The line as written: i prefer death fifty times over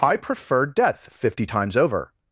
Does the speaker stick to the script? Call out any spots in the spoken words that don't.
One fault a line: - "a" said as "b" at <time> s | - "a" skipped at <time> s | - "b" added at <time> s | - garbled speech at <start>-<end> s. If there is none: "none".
none